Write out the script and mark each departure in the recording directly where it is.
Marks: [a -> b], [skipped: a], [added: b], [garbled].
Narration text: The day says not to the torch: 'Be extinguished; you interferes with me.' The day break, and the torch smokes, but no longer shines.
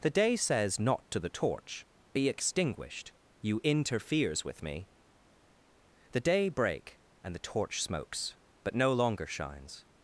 The day says not to the torch: 'Be extinguished; you interferes with me.' The day break, and the torch smokes, but no longer shines.